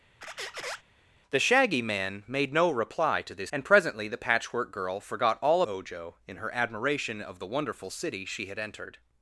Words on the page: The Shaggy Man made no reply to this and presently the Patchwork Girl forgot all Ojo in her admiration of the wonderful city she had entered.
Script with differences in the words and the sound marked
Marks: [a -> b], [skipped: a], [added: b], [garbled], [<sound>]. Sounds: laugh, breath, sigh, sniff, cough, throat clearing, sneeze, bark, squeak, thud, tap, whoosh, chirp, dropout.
[squeak] The Shaggy Man made no reply to this and presently the Patchwork Girl forgot all Ojo in her admiration of the wonderful city she had entered.